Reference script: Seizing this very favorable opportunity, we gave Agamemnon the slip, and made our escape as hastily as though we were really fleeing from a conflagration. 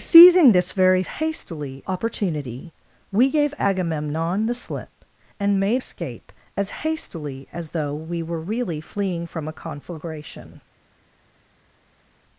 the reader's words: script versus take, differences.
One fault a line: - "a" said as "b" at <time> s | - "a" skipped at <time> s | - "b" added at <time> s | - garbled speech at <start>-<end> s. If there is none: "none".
- "favorable" said as "hastily" at 1.1 s
- "our" skipped at 5.8 s